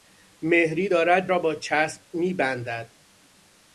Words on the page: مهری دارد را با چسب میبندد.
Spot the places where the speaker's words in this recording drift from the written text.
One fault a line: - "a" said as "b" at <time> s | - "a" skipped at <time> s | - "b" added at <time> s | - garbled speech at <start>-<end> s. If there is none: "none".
none